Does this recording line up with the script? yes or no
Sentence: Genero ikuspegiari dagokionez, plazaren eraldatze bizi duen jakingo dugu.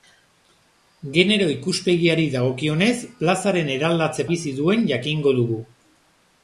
yes